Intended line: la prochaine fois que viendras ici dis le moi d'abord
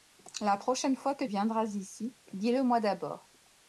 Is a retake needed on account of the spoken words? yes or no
no